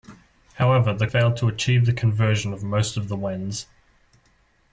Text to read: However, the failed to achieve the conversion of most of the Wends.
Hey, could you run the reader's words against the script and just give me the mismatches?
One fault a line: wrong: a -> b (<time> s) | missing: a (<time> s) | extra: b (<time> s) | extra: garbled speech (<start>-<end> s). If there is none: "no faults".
no faults